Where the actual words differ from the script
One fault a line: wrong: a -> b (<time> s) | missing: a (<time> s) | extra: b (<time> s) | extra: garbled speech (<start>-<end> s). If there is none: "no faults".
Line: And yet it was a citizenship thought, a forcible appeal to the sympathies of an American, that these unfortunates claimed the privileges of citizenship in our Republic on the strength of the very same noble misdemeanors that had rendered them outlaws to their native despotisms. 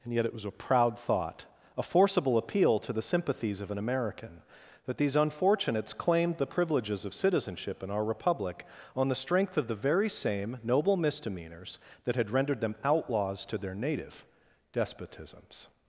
wrong: citizenship -> proud (0.5 s)